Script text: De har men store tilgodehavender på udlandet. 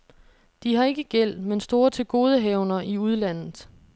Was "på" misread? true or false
true